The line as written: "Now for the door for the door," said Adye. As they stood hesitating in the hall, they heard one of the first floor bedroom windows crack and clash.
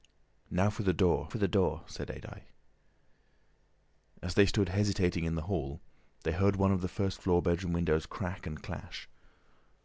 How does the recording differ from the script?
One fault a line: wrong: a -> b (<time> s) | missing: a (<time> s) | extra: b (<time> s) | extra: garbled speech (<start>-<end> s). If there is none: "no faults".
no faults